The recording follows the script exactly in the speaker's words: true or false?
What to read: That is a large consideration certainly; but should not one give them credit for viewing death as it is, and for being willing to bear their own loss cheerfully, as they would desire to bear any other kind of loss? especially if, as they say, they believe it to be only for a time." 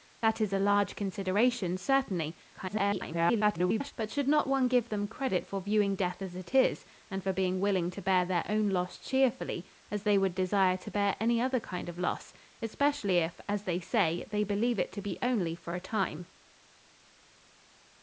false